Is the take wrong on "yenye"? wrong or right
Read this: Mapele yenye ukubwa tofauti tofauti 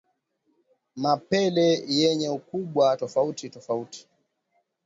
right